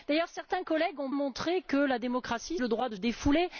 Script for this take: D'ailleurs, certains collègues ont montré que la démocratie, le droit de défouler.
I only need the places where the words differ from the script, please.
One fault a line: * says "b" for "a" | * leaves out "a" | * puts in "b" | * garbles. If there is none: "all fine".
all fine